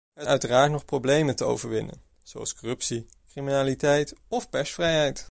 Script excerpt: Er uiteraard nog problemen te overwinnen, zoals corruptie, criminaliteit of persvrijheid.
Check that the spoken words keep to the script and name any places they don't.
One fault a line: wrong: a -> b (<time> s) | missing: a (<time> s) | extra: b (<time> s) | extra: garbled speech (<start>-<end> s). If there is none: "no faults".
no faults